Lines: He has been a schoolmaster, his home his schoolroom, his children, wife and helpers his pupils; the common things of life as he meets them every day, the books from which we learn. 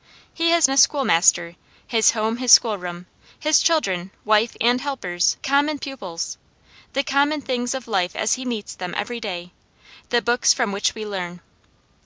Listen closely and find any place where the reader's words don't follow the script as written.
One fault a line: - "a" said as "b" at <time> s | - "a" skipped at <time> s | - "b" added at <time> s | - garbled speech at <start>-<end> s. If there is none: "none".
- "been" skipped at 0.7 s
- "his" said as "common" at 5.4 s